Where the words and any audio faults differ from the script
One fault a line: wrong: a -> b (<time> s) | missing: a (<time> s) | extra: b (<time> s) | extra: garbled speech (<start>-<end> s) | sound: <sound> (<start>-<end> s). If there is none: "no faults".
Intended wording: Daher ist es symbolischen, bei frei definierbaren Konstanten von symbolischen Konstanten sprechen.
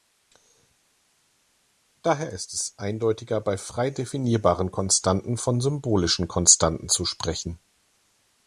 wrong: symbolischen -> eindeutiger (2.8 s)
extra: zu (6.9 s)